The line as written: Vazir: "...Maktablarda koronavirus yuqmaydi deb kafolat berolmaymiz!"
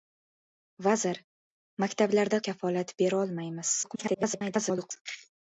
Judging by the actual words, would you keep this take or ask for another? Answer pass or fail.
fail